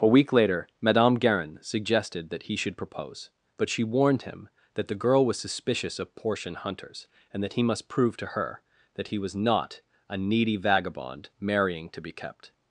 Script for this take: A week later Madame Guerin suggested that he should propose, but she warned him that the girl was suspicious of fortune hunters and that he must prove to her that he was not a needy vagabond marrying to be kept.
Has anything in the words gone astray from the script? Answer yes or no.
yes